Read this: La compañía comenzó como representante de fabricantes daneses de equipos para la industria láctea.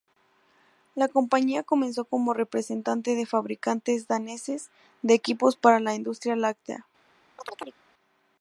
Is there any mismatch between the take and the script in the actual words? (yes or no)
no